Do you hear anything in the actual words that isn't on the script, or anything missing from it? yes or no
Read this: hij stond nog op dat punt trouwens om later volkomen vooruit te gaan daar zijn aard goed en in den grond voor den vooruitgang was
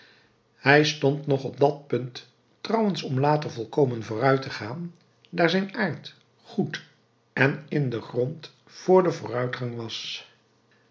no